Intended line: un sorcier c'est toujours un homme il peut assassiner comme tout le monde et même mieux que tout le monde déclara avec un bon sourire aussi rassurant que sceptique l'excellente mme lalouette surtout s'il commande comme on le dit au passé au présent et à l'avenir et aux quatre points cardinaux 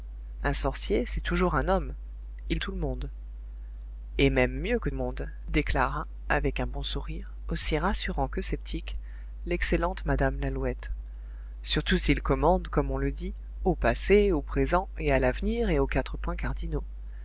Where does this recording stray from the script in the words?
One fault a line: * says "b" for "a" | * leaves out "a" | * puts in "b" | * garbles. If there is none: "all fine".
* leaves out "peut assassiner comme"
* leaves out "tout"